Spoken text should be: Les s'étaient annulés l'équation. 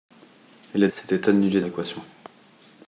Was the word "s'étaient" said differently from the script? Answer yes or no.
no